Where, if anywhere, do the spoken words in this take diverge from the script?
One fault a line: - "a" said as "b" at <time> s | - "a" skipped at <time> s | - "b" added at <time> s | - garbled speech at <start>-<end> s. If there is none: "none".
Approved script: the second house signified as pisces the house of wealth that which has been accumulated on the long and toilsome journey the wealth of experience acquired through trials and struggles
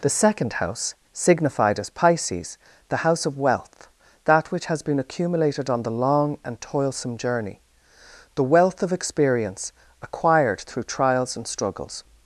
none